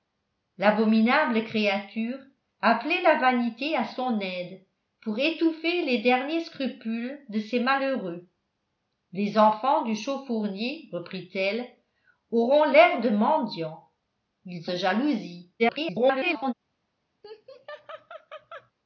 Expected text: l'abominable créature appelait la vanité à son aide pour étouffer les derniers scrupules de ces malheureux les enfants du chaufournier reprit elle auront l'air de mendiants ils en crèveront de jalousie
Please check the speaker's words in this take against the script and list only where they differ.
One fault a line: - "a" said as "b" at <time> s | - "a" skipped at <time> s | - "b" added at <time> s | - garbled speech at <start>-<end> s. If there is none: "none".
- "en crèveront" skipped at 14.7 s
- garbled speech at 15.6-16.5 s